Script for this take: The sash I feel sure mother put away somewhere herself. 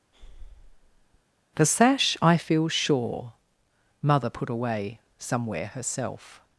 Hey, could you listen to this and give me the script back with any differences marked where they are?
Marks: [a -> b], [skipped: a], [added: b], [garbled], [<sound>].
[breath] The sash I feel sure mother put away somewhere herself.